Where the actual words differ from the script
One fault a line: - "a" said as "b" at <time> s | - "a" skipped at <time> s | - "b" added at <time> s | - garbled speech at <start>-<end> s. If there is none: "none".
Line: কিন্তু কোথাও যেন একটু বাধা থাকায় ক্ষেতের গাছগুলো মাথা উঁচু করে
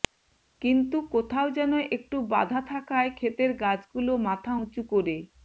none